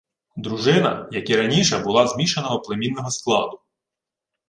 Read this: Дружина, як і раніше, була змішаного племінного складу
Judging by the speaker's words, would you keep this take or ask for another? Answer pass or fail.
pass